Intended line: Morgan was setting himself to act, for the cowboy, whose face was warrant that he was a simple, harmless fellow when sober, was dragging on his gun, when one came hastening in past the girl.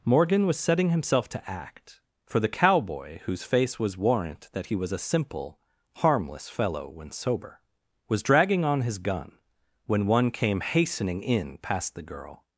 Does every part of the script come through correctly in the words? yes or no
yes